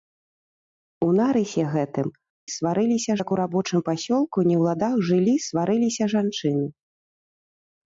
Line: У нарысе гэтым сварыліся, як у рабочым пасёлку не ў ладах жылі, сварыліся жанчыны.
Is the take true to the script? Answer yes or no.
yes